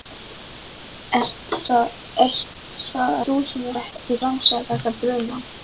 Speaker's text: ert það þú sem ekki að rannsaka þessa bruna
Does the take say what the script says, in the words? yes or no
yes